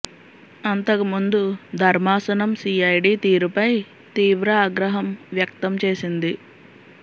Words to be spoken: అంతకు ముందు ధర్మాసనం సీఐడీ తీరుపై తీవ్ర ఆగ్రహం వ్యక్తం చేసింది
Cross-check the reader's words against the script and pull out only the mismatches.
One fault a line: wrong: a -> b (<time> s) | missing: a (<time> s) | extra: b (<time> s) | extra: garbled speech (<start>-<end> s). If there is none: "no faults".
no faults